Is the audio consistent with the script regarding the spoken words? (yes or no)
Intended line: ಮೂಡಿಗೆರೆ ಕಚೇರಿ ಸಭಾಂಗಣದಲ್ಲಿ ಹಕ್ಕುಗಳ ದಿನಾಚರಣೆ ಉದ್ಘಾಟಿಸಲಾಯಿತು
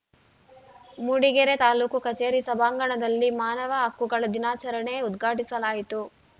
no